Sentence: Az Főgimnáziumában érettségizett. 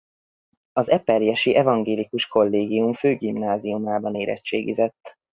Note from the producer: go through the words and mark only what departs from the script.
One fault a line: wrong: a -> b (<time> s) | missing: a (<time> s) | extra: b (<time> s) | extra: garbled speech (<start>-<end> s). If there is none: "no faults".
extra: eperjesi evangélikus Kollégium (0.9 s)